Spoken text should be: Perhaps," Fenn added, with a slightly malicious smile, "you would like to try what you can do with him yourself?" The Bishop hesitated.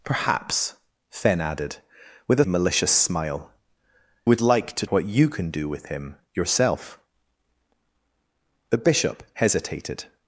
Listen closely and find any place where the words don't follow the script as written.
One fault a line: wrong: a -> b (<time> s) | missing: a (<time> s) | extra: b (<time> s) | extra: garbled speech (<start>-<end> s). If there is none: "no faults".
missing: slightly (2.4 s)
missing: you (3.5 s)
missing: try (4.8 s)